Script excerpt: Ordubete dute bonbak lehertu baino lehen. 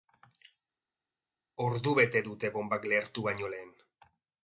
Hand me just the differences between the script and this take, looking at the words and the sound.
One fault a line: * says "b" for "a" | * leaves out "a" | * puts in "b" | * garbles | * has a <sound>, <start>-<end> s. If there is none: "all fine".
all fine